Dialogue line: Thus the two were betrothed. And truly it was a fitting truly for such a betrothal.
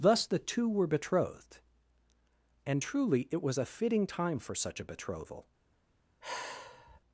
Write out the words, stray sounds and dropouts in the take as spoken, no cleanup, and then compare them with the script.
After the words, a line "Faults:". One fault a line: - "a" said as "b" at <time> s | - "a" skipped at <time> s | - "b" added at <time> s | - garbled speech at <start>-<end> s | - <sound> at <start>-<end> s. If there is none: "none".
Thus the two were betrothed. And truly it was a fitting time for such a betrothal.
Faults:
- "truly" said as "time" at 4.0 s
- sigh at 6.2-7.0 s